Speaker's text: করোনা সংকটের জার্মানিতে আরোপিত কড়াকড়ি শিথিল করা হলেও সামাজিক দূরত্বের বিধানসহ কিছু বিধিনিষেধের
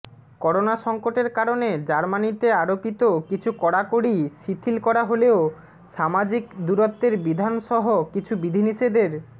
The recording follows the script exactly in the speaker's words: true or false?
false